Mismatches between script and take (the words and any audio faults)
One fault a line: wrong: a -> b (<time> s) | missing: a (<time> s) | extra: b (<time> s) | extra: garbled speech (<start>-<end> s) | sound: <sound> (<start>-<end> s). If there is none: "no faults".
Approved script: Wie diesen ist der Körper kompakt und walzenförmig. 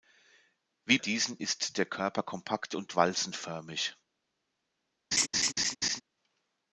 sound: laugh (5.1-6.0 s)